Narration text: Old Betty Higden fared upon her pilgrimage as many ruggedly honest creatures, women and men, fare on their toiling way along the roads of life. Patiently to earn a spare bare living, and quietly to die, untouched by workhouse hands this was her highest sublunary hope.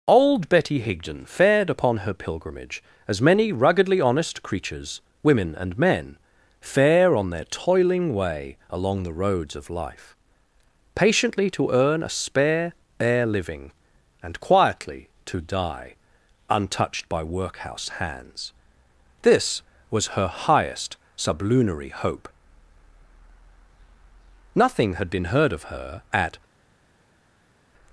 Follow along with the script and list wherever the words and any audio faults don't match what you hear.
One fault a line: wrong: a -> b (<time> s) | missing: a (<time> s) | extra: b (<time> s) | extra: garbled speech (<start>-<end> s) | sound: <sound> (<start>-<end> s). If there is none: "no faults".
extra: Nothing had been heard of her at (24.6 s)